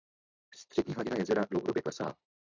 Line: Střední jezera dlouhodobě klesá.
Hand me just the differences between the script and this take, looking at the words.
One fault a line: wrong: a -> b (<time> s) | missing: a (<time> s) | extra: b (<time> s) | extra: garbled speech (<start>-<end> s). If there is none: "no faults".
extra: hladina (0.9 s)